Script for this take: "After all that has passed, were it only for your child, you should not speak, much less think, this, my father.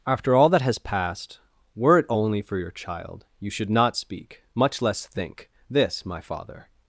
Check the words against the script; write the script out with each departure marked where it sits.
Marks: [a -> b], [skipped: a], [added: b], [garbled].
"After all that has passed, were it only for your child, you should not speak, much less think, this, my father.